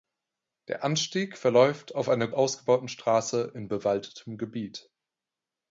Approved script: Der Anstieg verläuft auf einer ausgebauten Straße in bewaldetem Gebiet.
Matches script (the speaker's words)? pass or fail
pass